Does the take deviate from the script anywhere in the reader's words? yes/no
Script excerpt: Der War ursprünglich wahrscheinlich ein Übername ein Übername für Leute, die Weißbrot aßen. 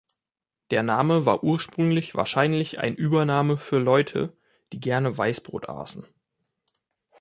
yes